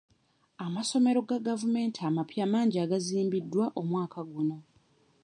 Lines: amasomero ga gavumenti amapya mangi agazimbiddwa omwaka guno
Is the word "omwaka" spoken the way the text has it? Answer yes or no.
yes